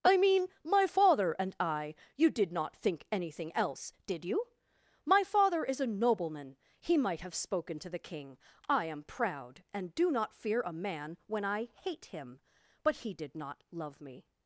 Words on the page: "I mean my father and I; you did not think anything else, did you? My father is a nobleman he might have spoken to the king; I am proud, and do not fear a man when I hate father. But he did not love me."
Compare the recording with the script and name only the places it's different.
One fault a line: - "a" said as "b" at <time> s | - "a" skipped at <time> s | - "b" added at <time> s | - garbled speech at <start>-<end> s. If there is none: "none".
- "father" said as "him" at 12.0 s